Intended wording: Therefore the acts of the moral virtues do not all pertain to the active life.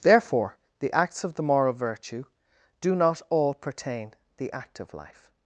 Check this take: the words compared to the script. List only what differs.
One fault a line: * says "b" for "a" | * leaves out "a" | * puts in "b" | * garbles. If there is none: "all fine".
* says "virtue" for "virtues"
* leaves out "to"